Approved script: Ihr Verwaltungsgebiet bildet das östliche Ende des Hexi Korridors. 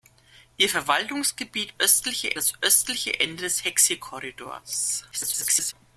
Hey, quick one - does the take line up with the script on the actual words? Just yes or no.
no